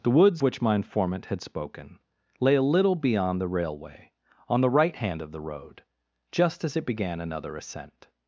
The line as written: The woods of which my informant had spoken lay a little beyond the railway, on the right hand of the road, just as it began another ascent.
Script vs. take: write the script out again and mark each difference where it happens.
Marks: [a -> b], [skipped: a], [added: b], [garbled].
The woods [skipped: of] which my informant had spoken lay a little beyond the railway, on the right hand of the road, just as it began another ascent.